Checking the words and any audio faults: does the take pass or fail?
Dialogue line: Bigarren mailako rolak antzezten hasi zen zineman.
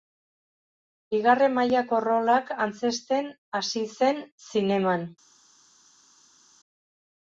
pass